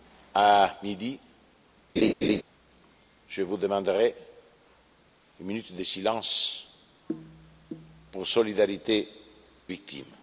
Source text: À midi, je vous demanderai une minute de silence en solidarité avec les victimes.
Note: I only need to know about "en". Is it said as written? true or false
true